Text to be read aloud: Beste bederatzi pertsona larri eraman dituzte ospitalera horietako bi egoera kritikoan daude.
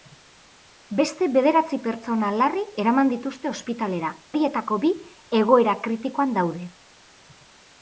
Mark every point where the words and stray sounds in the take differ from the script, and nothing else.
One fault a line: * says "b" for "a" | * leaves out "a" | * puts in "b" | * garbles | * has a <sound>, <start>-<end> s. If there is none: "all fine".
all fine